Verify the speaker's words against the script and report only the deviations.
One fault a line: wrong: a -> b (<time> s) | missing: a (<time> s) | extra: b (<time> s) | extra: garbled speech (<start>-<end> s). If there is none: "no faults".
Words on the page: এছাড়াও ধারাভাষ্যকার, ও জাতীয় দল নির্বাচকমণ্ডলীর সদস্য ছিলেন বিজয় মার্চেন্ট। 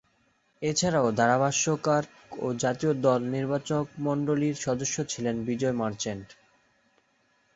no faults